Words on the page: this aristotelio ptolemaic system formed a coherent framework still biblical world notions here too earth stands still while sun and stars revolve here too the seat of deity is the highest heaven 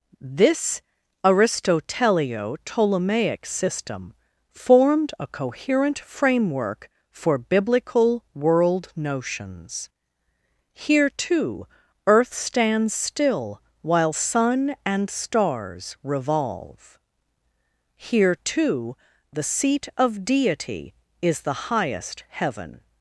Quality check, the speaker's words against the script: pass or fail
fail